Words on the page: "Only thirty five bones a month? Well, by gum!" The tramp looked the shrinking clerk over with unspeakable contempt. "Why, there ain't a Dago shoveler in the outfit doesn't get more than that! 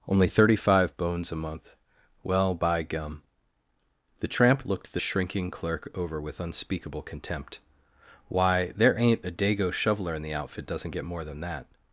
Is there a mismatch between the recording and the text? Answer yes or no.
no